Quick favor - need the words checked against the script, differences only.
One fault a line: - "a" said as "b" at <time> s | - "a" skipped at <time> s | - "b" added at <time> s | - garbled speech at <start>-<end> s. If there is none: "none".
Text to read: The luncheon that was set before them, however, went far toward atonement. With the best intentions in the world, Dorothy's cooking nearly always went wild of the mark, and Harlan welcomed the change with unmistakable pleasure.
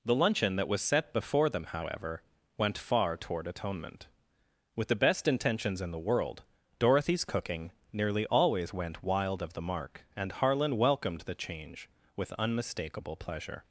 none